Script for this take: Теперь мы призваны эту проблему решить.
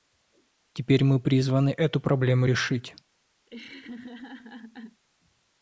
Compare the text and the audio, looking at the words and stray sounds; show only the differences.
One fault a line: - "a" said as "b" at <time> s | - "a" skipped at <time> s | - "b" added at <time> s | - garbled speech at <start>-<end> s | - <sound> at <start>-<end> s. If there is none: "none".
- laugh at 3.5-5.0 s